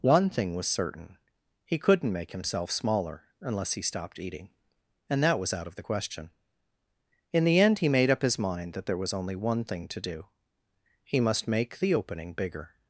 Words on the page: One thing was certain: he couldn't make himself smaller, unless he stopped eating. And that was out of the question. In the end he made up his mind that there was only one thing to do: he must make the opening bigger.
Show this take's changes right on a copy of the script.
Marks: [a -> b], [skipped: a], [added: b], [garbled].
One thing was certain: he couldn't make himself smaller, unless he stopped eating. And that was out of the question. In the end he made up his mind that there was only one thing to do: he must make the opening bigger.